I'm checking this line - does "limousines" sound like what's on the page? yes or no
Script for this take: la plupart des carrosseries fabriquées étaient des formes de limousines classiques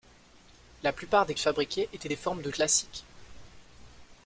no